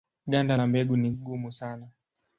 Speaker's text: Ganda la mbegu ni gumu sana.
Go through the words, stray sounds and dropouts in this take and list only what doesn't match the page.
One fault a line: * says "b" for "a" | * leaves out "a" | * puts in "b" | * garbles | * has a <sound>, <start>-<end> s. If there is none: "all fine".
all fine